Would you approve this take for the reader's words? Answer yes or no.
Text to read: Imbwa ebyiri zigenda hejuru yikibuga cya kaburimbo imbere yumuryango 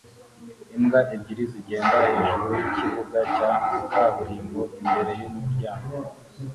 yes